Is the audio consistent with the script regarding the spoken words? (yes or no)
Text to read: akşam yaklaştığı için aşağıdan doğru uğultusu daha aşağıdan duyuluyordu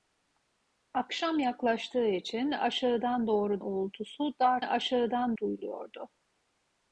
yes